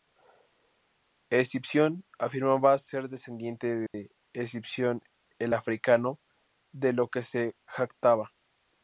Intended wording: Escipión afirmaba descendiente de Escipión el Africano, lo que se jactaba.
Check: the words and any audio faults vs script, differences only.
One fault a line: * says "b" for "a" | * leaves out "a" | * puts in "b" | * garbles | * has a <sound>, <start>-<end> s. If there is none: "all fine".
* puts in "ser"
* has a dropout, 3.9-3.9 s
* puts in "de"